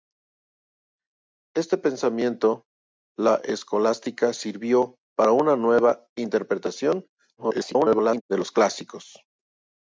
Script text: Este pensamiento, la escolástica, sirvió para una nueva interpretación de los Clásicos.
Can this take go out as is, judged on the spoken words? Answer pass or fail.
fail